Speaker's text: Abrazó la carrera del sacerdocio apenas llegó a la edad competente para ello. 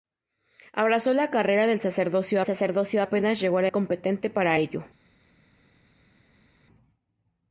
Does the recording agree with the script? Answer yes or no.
no